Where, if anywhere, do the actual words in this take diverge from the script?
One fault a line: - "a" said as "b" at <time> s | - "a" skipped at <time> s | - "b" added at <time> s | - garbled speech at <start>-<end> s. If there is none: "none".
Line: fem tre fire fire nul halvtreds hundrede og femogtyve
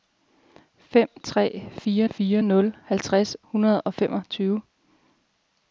none